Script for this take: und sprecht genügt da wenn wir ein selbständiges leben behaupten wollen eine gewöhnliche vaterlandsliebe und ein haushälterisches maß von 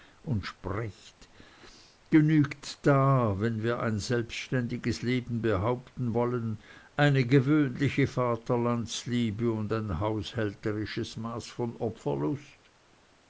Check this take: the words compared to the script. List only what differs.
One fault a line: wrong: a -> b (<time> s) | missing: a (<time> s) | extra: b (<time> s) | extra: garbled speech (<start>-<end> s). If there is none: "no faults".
no faults